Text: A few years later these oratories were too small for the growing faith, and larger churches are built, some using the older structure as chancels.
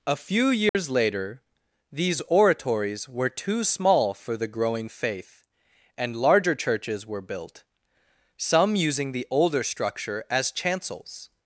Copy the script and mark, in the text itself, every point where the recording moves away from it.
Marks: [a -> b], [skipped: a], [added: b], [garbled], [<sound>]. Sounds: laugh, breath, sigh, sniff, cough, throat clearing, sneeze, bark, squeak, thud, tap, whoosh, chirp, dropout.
A few years [dropout] later these oratories were too small for the growing faith, and larger churches [are -> were] built, some using the older structure as chancels.